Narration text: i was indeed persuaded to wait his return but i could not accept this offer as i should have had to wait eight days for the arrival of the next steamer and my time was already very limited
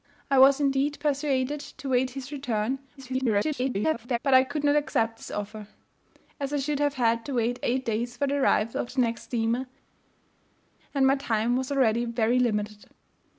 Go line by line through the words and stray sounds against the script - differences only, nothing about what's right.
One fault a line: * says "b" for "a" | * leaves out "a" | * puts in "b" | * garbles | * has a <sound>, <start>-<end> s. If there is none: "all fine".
* garbles